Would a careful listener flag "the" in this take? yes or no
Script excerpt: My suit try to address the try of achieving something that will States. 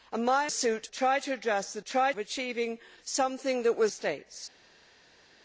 no